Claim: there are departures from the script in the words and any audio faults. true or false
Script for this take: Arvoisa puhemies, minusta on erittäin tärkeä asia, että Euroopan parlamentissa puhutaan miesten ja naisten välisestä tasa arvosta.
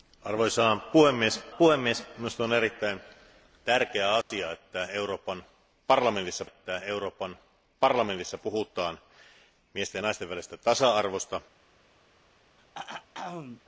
true